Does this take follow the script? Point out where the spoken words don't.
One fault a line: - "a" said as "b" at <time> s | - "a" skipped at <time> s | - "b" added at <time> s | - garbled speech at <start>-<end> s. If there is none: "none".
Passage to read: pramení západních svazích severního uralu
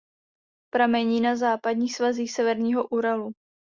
- "na" added at 1.2 s